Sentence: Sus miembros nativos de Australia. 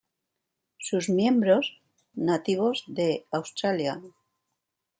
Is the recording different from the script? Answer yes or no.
no